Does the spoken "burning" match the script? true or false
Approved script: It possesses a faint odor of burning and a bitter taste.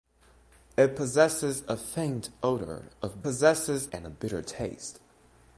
false